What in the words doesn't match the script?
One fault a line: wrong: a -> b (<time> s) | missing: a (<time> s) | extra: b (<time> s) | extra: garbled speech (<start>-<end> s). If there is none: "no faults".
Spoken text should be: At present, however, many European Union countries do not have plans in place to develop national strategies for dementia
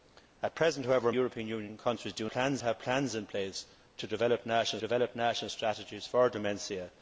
missing: many (1.1 s)
wrong: not -> plans (2.3 s)
extra: develop national (4.8 s)